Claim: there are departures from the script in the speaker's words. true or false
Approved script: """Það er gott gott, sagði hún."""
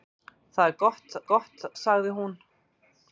false